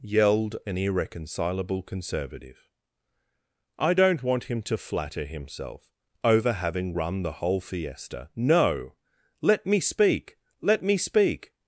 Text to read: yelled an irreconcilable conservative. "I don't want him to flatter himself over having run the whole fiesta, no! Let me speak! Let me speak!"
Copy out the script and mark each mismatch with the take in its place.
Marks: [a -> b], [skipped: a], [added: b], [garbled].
yelled an irreconcilable conservative. "I don't want him to flatter himself over having run the whole fiesta, no! Let me speak! Let me speak!"